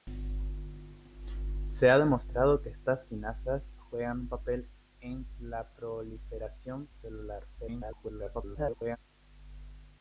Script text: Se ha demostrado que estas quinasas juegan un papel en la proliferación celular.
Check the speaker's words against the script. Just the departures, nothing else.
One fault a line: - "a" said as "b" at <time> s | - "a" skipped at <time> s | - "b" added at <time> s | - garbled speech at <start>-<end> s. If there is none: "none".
- garbled speech at 7.6-9.0 s